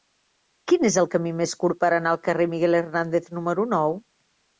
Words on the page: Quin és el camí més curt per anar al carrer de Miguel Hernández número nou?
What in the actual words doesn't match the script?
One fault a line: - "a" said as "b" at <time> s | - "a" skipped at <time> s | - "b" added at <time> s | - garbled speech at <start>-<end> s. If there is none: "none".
none